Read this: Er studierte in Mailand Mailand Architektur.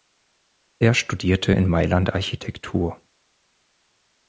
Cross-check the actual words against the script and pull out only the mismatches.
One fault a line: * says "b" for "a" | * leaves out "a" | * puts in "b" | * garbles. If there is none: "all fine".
* leaves out "Mailand"